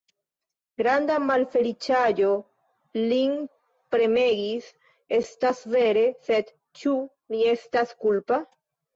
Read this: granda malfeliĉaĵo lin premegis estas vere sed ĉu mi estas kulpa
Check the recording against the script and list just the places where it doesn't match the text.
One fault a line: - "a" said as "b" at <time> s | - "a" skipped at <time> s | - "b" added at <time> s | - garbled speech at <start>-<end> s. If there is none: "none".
none